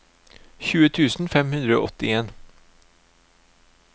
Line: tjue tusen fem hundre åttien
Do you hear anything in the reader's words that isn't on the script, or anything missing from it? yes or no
no